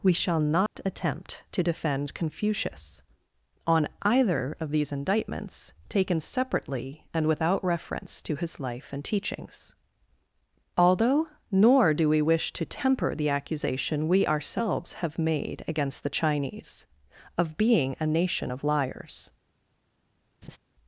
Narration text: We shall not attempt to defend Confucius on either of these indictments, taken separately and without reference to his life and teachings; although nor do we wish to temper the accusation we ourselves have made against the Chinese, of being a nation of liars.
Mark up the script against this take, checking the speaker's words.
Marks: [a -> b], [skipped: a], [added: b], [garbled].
We shall not attempt to defend Confucius on either of these indictments, taken separately and without reference to his life and teachings; although nor do we wish to temper the accusation we ourselves have made against the Chinese, of being a nation of liars.